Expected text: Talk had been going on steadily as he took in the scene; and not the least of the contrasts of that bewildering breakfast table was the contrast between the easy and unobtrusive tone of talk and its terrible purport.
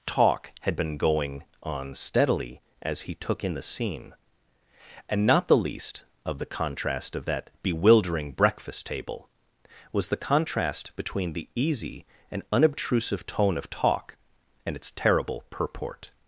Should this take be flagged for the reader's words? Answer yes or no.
yes